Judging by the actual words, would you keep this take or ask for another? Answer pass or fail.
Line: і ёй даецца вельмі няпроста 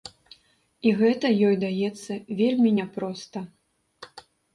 fail